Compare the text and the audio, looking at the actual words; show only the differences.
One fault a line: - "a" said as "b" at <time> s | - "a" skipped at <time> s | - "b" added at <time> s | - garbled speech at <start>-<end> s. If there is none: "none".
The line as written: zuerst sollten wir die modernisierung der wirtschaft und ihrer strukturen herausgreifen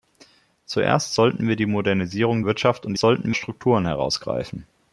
- "der" skipped at 2.4 s
- "ihrer" said as "sollten" at 3.0 s